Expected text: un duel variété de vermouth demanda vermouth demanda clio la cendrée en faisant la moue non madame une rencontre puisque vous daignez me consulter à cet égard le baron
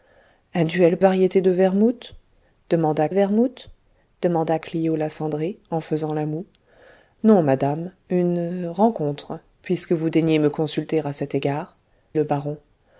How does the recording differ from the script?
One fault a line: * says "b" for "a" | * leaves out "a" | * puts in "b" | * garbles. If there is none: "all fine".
all fine